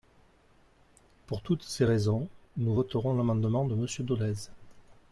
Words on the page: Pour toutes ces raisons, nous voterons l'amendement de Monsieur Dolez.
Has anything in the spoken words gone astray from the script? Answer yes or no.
no